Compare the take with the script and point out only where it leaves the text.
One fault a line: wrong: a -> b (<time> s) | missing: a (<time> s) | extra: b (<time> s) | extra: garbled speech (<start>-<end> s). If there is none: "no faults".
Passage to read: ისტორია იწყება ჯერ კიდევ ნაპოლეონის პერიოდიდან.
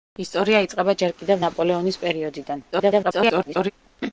extra: garbled speech (2.7-3.7 s)